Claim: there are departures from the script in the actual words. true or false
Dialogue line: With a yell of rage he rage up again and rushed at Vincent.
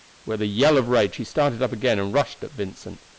true